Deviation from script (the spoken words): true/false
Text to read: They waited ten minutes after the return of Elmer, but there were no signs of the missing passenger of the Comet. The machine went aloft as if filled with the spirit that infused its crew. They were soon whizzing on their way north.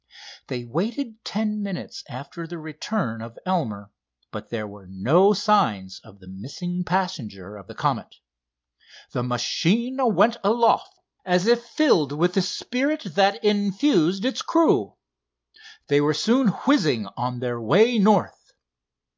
false